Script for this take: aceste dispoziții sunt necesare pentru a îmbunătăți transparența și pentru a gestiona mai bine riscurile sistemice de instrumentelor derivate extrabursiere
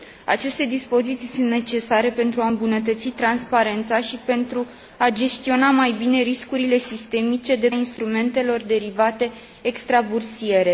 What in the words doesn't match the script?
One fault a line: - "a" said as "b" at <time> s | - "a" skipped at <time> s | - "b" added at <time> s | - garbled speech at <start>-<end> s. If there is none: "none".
none